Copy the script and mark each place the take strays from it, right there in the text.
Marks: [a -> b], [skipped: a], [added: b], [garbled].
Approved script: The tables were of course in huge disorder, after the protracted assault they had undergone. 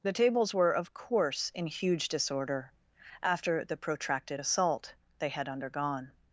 The tables were of course in huge disorder, after the protracted assault they had undergone.